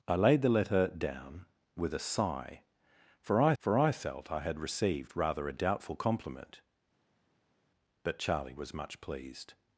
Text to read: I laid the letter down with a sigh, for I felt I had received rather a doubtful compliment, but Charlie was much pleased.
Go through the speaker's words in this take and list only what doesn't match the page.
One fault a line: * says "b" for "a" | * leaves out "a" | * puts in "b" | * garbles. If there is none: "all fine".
* puts in "for I"